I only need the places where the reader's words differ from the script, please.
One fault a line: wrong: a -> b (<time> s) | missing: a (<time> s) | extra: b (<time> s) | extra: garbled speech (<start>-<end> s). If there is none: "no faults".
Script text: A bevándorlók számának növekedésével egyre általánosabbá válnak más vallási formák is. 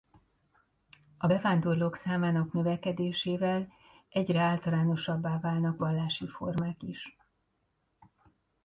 missing: más (5.8 s)